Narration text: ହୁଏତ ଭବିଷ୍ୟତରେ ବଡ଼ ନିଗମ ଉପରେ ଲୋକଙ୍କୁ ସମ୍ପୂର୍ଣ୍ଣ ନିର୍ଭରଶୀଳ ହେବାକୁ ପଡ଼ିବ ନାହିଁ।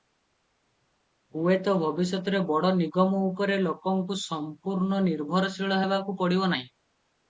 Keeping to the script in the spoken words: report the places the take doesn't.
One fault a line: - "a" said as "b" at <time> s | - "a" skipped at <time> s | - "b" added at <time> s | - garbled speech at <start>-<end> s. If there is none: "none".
none